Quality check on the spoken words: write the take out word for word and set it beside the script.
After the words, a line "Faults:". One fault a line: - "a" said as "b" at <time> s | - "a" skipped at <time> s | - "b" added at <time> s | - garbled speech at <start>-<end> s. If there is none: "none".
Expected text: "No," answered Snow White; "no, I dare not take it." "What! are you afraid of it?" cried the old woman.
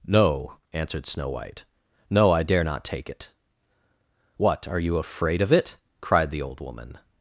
"No," answered Snow White; "no, I dare not take it." "What! are you afraid of it?" cried the old woman.
Faults:
none